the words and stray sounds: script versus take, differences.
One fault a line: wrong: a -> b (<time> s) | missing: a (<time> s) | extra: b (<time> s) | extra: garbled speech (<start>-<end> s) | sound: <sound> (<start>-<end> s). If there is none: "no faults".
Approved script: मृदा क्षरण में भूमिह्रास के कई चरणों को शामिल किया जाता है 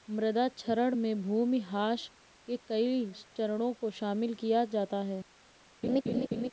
sound: laugh (5.8-6.5 s)